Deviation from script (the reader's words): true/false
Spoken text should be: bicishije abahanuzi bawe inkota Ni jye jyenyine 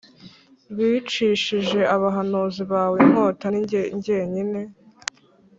false